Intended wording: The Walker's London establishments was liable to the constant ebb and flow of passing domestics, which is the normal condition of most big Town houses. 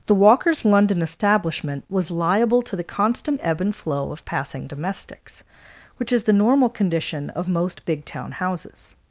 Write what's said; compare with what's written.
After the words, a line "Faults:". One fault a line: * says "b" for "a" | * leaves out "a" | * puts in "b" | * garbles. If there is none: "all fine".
The Walker's London establishment was liable to the constant ebb and flow of passing domestics, which is the normal condition of most big Town houses.
Faults:
* says "establishment" for "establishments"